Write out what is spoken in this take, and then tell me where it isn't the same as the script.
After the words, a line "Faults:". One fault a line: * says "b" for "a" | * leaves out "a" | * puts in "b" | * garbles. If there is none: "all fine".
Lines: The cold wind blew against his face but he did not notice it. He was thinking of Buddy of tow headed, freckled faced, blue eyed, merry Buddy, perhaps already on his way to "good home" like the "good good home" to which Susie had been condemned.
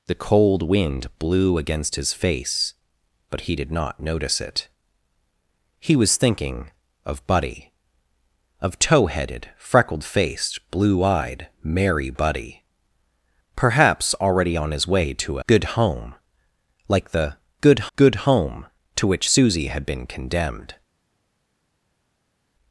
The cold wind blew against his face but he did not notice it. He was thinking of Buddy of tow headed, freckled faced, blue eyed, merry Buddy, perhaps already on his way to "good home" like the "good good home" to which Susie had been condemned.
Faults:
all fine